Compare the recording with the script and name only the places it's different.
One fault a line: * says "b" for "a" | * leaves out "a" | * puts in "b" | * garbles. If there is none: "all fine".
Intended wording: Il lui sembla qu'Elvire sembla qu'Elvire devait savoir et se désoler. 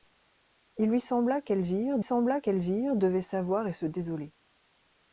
all fine